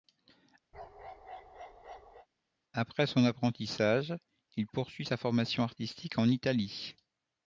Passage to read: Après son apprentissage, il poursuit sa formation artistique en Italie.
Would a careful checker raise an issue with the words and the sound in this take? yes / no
yes